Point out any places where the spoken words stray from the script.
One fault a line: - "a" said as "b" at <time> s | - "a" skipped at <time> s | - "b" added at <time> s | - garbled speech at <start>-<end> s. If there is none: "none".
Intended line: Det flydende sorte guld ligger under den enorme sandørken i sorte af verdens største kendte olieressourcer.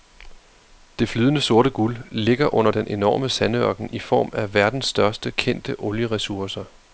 - "sorte" said as "form" at 4.0 s